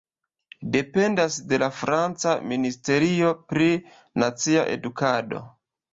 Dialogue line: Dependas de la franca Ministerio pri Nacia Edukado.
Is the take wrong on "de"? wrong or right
right